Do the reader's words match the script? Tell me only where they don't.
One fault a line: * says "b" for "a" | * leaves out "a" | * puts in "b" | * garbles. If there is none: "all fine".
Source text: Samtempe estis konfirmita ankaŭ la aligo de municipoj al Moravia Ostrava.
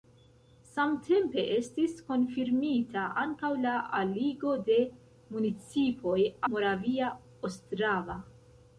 * leaves out "al"